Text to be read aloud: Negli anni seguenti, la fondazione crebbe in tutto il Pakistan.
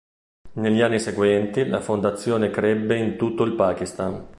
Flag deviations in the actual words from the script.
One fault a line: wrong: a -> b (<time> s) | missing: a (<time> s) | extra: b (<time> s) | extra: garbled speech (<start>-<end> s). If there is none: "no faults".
no faults